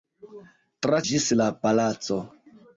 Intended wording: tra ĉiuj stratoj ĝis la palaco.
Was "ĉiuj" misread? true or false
true